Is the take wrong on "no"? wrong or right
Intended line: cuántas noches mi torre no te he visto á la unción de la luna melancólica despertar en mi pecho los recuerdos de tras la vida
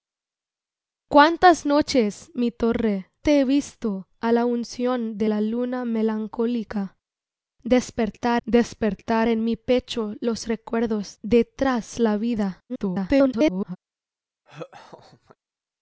wrong